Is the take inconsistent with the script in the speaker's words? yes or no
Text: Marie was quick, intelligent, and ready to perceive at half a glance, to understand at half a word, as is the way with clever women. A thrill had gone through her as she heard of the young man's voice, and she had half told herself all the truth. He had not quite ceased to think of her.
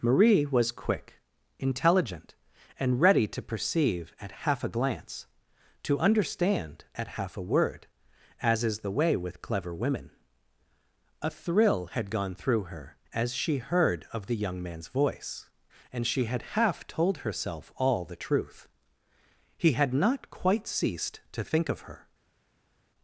no